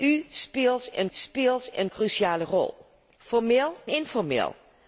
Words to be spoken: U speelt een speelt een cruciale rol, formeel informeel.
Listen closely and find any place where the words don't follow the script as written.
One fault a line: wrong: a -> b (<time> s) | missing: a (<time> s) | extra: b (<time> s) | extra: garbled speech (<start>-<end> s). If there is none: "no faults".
no faults